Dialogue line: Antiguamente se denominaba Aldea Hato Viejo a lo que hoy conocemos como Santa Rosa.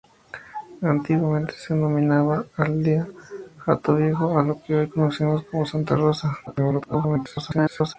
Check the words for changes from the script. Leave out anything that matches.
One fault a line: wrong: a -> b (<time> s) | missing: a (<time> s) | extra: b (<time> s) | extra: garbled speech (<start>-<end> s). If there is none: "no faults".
extra: garbled speech (6.5-8.0 s)